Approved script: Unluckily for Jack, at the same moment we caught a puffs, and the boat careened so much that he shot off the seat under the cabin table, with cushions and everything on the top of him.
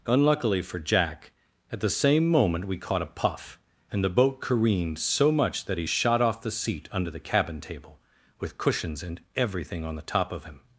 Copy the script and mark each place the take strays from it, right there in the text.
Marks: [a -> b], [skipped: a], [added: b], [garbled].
Unluckily for Jack, at the same moment we caught a [puffs, -> puff] and the boat careened so much that he shot off the seat under the cabin table, with cushions and everything on the top of him.